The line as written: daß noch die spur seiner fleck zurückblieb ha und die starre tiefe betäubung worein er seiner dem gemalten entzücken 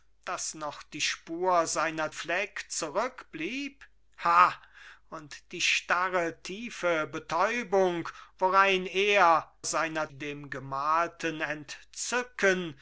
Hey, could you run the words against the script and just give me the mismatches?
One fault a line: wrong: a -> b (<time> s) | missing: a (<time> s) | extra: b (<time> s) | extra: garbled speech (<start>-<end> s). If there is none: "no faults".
no faults